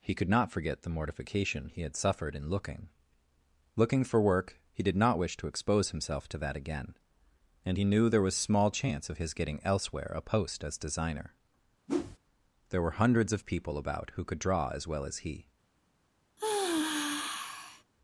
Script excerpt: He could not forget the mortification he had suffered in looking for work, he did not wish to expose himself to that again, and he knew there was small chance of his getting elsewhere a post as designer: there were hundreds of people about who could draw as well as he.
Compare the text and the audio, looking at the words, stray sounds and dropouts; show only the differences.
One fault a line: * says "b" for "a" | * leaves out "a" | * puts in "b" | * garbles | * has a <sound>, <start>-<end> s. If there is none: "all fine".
* puts in "looking"
* has a whoosh, 11.9-12.2 s
* has a sigh, 16.4-17.8 s